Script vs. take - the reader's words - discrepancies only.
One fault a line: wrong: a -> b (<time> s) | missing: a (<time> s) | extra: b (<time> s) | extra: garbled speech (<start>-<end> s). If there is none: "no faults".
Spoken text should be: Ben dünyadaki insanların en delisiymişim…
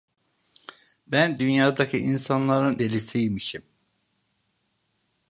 missing: en (2.8 s)